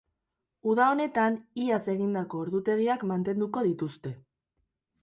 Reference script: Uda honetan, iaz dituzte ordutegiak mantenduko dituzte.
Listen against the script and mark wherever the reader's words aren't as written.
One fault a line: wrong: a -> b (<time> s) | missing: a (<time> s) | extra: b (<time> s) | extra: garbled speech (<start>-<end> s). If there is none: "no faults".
wrong: dituzte -> egindako (1.9 s)